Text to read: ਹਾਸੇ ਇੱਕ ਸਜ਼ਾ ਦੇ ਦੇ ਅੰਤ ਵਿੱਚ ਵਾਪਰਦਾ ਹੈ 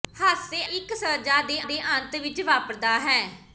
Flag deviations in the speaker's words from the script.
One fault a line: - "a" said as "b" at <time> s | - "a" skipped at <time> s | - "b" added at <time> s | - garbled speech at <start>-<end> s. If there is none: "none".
none